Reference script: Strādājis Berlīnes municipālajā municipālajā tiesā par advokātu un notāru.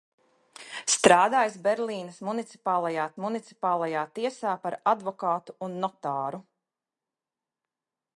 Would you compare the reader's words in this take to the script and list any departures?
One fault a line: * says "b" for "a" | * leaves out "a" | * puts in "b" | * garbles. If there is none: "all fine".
all fine